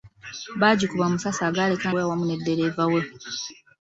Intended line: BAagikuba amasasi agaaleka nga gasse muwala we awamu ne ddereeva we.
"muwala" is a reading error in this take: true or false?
true